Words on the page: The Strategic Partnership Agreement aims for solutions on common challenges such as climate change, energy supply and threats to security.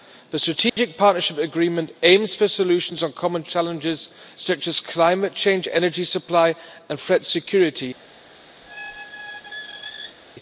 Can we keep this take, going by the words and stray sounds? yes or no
no